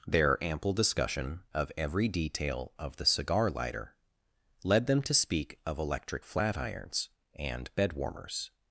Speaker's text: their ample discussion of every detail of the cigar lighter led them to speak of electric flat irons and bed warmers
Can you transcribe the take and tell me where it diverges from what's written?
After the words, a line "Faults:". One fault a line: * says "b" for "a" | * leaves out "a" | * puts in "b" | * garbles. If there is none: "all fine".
their ample discussion of every detail of the cigar lighter led them to speak of electric flat irons and bed warmers
Faults:
all fine